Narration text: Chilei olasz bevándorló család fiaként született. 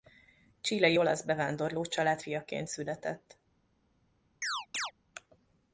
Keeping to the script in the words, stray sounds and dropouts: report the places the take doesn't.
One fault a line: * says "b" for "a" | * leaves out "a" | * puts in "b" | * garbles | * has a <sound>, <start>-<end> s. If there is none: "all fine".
* has a chirp, 4.4-4.9 s